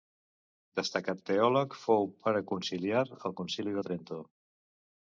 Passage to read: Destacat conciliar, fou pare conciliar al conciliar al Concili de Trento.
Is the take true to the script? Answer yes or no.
no